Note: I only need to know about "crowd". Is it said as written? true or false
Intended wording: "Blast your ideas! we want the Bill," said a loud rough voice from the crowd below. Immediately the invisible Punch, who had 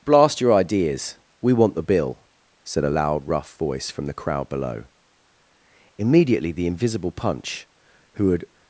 true